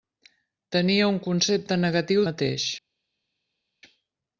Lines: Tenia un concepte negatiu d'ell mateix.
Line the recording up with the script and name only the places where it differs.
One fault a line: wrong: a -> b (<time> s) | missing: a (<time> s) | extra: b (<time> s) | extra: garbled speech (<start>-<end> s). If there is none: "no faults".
missing: d'ell (2.2 s)